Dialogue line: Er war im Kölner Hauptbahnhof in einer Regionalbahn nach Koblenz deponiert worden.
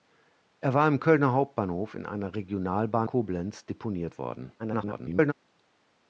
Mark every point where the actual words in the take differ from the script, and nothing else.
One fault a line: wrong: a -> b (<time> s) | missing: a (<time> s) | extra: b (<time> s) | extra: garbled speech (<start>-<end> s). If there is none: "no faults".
missing: nach (3.1 s)
extra: garbled speech (4.6-5.3 s)